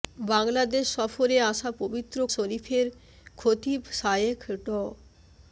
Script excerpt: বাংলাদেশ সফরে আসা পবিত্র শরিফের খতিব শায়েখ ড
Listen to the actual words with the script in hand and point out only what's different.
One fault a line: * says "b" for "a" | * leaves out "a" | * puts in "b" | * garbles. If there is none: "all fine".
all fine